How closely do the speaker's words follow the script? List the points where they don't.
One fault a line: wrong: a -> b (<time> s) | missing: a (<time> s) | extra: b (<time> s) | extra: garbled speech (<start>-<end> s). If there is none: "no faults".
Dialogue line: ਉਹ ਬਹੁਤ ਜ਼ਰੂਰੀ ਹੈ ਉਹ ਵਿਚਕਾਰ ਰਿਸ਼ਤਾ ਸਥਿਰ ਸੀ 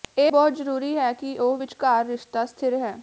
wrong: ਉਹ -> ਇਹ (0.2 s)
extra: ਕਿ (1.1 s)
wrong: ਸੀ -> ਹੈ (2.8 s)